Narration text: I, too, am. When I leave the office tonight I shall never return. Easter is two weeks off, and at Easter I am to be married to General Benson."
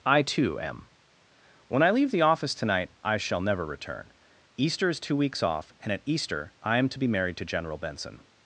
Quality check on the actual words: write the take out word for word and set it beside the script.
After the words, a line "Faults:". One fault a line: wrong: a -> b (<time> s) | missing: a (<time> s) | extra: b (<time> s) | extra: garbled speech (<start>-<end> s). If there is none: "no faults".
I, too, am. When I leave the office tonight I shall never return. Easter is two weeks off, and at Easter I am to be married to General Benson."
Faults:
no faults